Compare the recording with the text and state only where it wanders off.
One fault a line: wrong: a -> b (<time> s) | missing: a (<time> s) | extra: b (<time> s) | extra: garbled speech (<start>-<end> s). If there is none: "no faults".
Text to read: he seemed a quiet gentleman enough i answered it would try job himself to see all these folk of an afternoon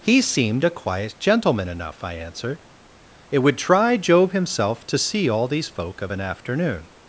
no faults